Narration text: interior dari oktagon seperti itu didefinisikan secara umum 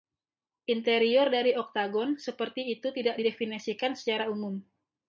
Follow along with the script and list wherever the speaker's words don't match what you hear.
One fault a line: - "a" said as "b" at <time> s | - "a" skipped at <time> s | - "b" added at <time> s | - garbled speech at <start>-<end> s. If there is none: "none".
- "tidak" added at 2.9 s